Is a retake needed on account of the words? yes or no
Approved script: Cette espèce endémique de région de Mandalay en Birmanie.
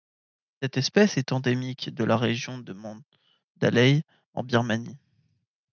yes